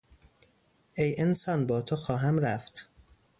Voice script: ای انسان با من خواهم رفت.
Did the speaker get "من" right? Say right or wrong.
wrong